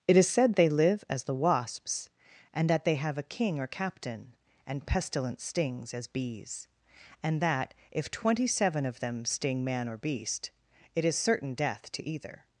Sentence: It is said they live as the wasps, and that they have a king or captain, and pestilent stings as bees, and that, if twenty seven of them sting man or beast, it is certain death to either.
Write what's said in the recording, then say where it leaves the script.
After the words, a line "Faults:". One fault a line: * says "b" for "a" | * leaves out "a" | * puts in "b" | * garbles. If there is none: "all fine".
It is said they live as the wasps, and that they have a king or captain, and pestilent stings as bees, and that, if twenty seven of them sting man or beast, it is certain death to either.
Faults:
all fine